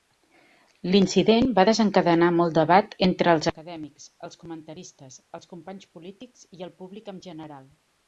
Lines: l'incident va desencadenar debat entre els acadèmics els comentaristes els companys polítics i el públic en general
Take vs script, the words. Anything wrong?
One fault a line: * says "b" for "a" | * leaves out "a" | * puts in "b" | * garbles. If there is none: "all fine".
* puts in "molt"